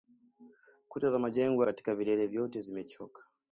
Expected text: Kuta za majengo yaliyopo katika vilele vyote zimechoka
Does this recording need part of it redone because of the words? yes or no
yes